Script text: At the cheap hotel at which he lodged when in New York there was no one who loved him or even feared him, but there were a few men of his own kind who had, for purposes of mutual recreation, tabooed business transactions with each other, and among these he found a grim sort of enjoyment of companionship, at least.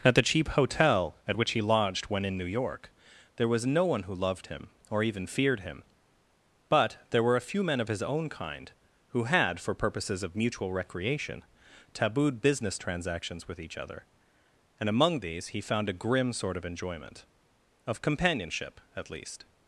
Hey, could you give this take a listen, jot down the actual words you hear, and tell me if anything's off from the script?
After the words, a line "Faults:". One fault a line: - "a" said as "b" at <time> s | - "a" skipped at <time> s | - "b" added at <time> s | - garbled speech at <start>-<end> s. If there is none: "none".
At the cheap hotel at which he lodged when in New York there was no one who loved him or even feared him, but there were a few men of his own kind who had, for purposes of mutual recreation, tabooed business transactions with each other, and among these he found a grim sort of enjoyment of companionship, at least.
Faults:
none